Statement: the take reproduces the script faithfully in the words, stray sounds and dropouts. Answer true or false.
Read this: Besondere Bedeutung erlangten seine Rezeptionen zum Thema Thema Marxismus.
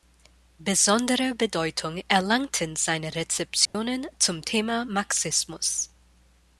false